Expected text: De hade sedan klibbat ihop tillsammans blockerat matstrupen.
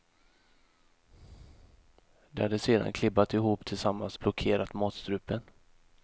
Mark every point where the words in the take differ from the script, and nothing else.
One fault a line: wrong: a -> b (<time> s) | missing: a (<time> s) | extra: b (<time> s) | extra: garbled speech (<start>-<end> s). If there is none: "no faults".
no faults